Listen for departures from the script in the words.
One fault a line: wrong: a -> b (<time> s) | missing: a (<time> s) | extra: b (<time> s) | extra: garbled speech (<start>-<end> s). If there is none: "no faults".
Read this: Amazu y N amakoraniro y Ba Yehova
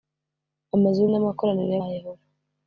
no faults